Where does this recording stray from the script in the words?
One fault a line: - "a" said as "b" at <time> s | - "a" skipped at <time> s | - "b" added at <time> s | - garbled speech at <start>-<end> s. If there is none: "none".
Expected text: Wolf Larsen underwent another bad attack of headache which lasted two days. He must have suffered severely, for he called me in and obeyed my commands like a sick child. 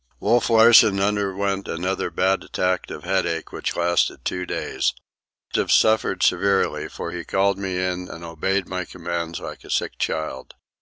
- "He must" skipped at 5.0 s